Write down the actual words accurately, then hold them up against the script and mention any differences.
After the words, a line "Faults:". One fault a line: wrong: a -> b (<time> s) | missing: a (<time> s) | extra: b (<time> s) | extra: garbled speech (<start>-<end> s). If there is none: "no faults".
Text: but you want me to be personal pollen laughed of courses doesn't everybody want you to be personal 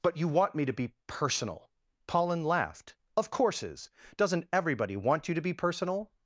but you want me to be personal pollen laughed of courses doesn't everybody want you to be personal
Faults:
no faults